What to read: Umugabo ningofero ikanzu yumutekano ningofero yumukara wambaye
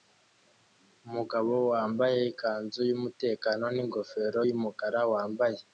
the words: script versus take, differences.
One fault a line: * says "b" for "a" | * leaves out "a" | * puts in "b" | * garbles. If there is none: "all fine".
* says "wambaye" for "ningofero"